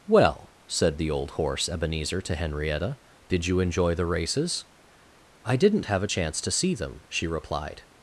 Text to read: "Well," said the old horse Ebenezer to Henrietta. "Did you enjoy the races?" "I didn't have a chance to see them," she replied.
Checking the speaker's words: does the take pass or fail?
pass